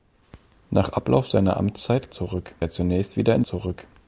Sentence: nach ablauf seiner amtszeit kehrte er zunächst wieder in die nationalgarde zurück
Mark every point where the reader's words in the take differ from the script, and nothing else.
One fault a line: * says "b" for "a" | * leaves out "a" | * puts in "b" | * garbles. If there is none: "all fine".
* says "zurück" for "kehrte"
* leaves out "die nationalgarde"